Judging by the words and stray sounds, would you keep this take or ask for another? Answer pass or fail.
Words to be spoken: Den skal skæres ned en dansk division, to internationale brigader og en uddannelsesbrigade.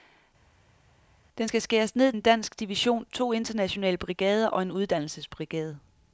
pass